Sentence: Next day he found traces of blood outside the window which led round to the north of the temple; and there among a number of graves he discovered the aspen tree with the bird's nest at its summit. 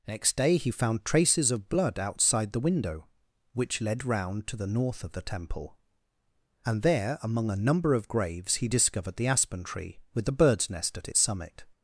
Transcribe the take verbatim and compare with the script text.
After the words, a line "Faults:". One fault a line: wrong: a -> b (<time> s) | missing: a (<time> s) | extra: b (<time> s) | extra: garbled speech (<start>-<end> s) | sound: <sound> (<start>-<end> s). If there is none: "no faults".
Next day he found traces of blood outside the window which led round to the north of the temple; and there among a number of graves he discovered the aspen tree with the bird's nest at its summit.
Faults:
no faults